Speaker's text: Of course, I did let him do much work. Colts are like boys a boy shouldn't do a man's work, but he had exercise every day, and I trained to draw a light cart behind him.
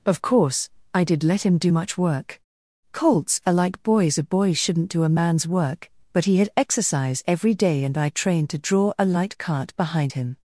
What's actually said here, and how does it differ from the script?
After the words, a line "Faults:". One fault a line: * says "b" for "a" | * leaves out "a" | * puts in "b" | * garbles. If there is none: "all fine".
Of course, I did let him do much work. Colts are like boys a boy shouldn't do a man's work, but he had exercise every day, and I trained to draw a light cart behind him.
Faults:
all fine